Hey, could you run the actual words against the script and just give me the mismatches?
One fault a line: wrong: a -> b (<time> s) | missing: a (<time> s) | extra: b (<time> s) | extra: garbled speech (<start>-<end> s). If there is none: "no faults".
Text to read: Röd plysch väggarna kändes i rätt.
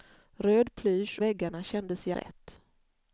no faults